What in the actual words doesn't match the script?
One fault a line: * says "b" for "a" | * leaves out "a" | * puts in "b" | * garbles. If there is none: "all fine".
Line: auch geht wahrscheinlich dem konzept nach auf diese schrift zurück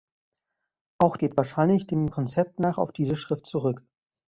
all fine